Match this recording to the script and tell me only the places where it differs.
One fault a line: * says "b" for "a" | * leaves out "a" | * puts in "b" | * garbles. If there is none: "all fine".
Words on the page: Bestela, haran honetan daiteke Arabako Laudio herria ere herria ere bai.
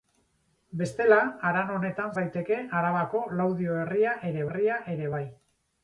all fine